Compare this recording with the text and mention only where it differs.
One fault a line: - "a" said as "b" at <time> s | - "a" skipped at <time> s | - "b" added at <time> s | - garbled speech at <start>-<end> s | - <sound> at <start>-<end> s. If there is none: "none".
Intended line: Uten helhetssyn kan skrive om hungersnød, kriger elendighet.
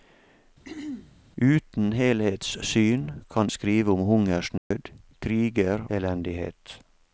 - throat clearing at 0.6-1.2 s
- dropout at 4.6-4.7 s